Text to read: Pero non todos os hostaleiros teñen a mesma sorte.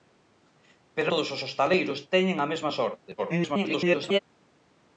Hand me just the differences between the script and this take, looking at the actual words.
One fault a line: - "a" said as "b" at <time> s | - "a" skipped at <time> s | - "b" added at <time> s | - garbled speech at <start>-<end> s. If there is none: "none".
- "non" skipped at 1.1 s
- garbled speech at 3.2-4.2 s